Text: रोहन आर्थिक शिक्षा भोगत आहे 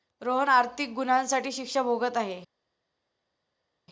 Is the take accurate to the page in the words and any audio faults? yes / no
no